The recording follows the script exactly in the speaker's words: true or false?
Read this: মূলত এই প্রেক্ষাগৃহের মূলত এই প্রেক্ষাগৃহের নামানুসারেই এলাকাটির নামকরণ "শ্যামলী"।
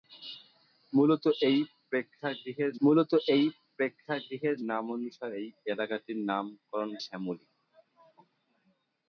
true